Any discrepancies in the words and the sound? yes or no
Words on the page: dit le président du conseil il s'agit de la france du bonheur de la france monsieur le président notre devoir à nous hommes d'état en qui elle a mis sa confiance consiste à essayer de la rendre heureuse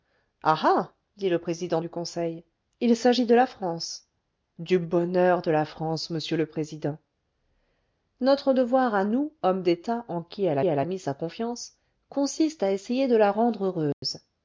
yes